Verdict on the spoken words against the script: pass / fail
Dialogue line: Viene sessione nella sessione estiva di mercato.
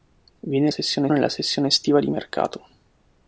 pass